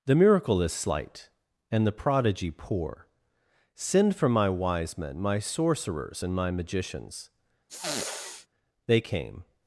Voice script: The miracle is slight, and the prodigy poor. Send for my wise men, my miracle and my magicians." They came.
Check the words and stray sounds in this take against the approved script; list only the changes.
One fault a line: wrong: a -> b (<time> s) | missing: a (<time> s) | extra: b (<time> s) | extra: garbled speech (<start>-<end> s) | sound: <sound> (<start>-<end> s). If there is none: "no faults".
wrong: miracle -> sorcerers (5.4 s)
sound: sniff (7.7-8.5 s)